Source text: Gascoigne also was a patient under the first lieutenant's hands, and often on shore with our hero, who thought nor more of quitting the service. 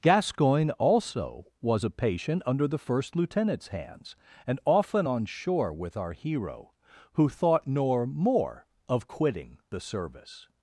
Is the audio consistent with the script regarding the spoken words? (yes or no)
yes